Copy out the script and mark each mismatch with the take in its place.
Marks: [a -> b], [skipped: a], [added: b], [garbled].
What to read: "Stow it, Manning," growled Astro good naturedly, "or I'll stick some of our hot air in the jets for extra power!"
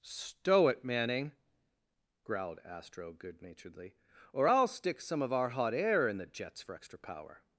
"Stow it, Manning," growled Astro good naturedly, "or I'll stick some of our hot air in the jets for extra power!"